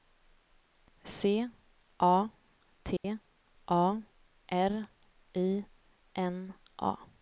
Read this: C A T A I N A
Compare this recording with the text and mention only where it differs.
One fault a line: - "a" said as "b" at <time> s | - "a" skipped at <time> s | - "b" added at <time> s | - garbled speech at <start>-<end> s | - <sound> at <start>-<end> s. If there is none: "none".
- dropout at 3.0-3.0 s
- "R" added at 4.0 s